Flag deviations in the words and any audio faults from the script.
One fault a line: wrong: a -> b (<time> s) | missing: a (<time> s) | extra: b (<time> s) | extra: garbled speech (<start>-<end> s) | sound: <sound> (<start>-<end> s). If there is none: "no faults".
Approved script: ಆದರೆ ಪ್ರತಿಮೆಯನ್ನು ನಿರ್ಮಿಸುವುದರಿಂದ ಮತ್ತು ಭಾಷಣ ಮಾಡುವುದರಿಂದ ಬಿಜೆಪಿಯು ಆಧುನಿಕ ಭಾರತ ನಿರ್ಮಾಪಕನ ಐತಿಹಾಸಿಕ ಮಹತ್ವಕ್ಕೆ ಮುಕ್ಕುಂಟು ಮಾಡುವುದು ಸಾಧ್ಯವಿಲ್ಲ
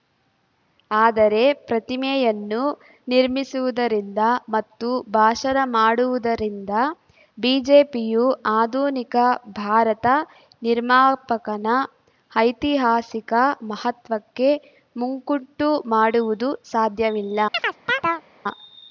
sound: chirp (17.5-18.3 s)